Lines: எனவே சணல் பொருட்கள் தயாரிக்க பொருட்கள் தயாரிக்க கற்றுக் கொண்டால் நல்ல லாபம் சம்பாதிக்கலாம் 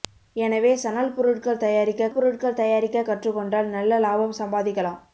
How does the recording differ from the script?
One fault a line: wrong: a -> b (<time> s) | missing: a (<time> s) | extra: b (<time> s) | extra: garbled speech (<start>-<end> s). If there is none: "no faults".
no faults